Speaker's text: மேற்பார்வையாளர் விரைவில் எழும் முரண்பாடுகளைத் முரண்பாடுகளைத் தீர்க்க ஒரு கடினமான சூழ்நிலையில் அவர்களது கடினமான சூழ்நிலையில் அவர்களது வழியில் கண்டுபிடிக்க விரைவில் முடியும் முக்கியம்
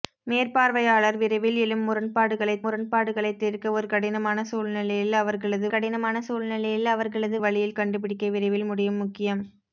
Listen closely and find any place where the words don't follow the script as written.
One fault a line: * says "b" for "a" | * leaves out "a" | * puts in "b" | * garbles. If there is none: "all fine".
all fine